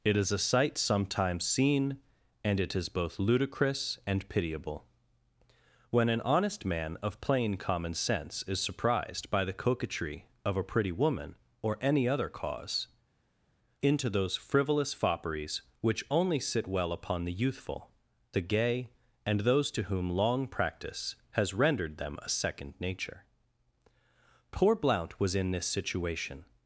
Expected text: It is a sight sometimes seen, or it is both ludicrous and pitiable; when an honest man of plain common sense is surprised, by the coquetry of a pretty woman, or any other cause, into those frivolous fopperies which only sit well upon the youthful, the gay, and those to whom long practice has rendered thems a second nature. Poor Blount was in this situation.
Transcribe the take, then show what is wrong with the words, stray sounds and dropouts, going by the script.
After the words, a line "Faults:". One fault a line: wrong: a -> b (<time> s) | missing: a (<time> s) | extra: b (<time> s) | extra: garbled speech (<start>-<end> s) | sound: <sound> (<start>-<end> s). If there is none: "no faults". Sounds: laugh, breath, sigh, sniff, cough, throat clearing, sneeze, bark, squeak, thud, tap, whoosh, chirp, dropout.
It is a sight sometimes seen, and it is both ludicrous and pitiable; when an honest man of plain common sense is surprised, by the coquetry of a pretty woman, or any other cause, into those frivolous fopperies which only sit well upon the youthful, the gay, and those to whom long practice has rendered them a second nature. Poor Blount was in this situation.
Faults:
wrong: or -> and (2.4 s)
wrong: thems -> them (22.0 s)